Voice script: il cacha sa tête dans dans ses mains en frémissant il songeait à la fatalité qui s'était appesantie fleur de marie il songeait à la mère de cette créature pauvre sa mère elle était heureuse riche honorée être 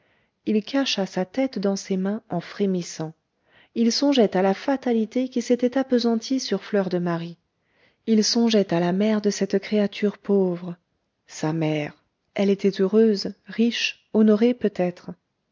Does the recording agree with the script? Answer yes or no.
no